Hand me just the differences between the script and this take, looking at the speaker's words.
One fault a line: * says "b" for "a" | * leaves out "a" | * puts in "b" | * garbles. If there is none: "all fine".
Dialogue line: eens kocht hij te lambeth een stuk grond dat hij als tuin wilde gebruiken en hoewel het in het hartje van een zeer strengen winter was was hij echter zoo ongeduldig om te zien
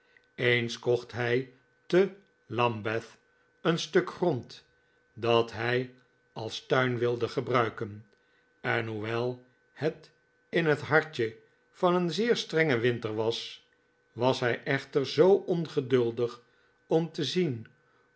all fine